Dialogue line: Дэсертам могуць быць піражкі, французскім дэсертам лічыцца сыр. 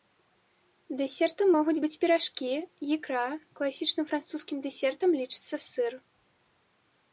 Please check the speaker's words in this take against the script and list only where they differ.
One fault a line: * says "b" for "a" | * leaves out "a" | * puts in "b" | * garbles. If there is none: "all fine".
* puts in "ікра класічным"